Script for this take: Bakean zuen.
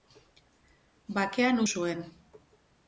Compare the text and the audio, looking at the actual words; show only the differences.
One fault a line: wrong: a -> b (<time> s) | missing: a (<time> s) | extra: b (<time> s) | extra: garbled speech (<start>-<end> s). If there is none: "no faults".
no faults